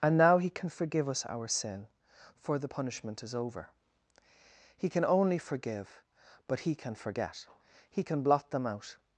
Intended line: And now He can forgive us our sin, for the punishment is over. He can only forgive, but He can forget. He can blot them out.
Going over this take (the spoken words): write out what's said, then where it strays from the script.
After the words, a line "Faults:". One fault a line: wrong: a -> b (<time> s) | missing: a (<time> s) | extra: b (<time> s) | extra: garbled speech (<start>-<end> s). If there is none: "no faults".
And now He can forgive us our sin, for the punishment is over. He can only forgive, but He can forget. He can blot them out.
Faults:
no faults